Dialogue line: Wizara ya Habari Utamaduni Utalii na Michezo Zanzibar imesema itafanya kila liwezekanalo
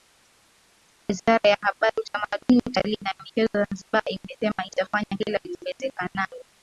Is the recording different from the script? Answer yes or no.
no